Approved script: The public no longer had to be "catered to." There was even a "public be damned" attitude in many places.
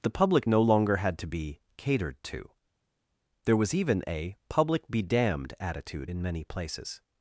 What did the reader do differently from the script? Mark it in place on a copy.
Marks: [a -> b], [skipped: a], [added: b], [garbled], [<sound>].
The public no longer had to be "catered to." There was even a "public be damned" attitude in many places.